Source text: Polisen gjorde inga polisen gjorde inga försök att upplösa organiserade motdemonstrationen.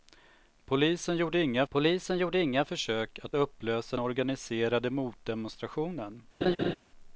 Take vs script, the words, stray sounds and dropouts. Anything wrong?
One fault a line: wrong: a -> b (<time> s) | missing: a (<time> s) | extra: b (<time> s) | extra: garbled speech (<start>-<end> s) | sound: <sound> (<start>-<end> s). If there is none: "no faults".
sound: laugh (6.4-6.7 s)